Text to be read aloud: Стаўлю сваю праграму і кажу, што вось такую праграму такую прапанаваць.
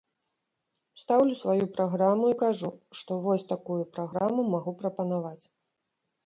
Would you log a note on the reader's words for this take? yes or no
yes